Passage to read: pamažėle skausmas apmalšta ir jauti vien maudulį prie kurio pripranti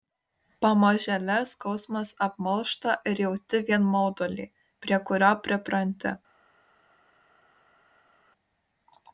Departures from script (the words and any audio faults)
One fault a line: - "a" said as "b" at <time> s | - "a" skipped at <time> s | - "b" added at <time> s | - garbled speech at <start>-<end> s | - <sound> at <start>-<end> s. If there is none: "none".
none